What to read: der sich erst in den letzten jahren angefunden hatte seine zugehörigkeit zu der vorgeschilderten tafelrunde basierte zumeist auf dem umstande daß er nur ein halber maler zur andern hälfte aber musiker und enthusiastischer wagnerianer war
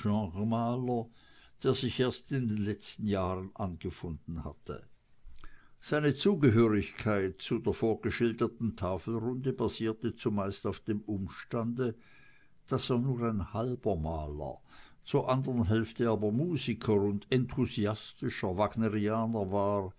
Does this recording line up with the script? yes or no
yes